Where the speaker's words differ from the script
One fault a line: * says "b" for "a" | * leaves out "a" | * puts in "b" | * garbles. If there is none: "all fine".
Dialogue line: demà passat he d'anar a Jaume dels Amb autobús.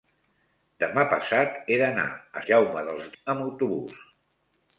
all fine